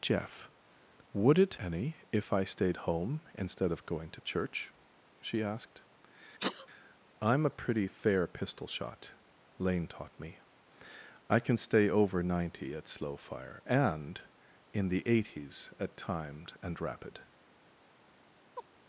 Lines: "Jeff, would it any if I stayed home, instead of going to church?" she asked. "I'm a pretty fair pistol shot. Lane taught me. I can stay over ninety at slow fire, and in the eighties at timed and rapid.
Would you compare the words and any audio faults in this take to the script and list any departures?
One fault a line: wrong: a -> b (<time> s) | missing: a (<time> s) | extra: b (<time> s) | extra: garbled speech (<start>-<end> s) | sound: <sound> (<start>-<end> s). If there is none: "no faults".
sound: sneeze (6.4-6.7 s)
sound: chirp (18.6-18.7 s)